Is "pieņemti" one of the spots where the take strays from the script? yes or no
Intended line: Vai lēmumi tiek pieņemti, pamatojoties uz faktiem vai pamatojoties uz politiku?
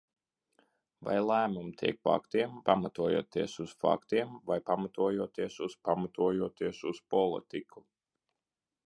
yes